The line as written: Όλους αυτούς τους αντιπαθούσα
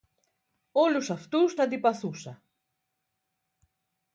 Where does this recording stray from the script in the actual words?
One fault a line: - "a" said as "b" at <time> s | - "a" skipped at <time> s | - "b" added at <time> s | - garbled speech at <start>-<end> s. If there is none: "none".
- "τους" skipped at 1.6 s